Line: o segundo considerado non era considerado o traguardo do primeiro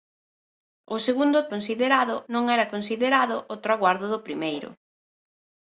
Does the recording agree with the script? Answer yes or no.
yes